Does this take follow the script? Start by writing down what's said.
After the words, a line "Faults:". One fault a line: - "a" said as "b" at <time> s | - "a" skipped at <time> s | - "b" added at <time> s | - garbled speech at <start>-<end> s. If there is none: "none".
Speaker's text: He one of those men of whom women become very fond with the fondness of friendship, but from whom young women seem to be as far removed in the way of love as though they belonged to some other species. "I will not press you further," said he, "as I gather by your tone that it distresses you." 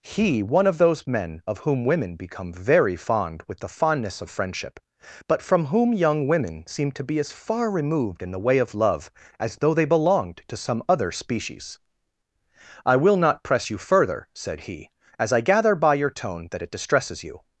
He one of those men of whom women become very fond with the fondness of friendship, but from whom young women seem to be as far removed in the way of love as though they belonged to some other species. "I will not press you further," said he, "as I gather by your tone that it distresses you."
Faults:
none